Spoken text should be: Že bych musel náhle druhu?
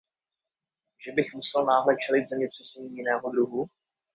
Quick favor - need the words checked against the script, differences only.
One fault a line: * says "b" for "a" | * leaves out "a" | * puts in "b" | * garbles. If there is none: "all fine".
* puts in "čelit zemětřesení jiného"